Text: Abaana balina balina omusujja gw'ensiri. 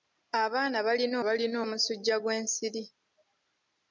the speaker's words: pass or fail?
pass